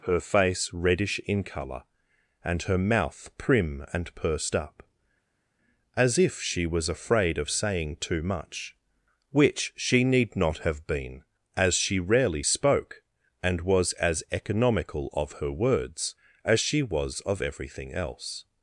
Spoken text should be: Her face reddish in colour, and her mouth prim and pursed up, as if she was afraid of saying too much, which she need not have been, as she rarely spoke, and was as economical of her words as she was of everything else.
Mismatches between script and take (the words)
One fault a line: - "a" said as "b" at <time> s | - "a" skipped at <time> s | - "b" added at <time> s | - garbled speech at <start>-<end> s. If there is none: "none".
none